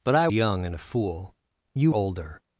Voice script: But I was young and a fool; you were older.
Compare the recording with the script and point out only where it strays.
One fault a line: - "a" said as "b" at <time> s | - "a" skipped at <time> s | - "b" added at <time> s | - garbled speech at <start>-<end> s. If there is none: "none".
- "was" skipped at 0.3 s
- "were" skipped at 1.9 s